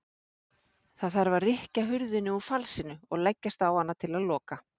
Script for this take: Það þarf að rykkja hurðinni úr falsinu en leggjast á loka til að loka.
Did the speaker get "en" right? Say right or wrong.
wrong